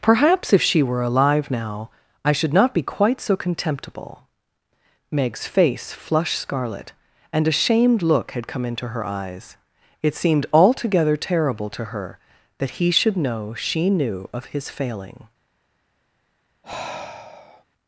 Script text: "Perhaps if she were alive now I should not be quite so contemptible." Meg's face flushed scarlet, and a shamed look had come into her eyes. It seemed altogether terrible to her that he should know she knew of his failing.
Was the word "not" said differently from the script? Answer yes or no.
no